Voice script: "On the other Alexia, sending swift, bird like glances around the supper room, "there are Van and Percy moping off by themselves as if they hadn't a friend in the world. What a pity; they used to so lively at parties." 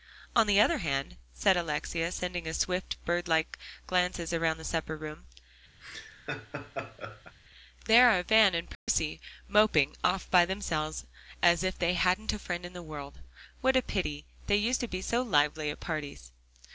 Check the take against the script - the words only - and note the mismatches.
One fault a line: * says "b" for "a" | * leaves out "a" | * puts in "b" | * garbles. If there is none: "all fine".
* puts in "hand said"
* puts in "be"